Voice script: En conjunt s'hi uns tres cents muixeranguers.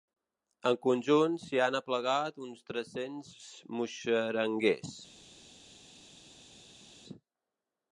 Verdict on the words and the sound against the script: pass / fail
fail